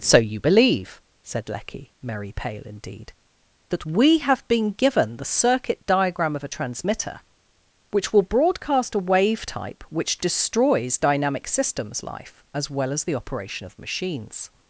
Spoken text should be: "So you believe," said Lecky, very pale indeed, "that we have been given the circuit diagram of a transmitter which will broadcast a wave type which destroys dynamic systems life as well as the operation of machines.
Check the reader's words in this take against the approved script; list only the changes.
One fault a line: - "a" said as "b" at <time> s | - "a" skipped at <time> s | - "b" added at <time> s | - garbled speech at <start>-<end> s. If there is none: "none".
- "very" said as "merry" at 2.0 s